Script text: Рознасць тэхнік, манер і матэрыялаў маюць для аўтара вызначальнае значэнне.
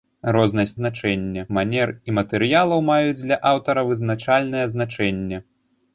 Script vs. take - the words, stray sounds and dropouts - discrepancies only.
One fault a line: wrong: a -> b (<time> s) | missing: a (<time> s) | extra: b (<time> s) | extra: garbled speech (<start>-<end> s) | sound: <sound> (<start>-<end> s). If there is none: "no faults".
wrong: тэхнік -> значэнне (0.8 s)